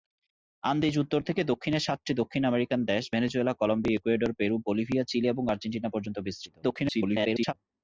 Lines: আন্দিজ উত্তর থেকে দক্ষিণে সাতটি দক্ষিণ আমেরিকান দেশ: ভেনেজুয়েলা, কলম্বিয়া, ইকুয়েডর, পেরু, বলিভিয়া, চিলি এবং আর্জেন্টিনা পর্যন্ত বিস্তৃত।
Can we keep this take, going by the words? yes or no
no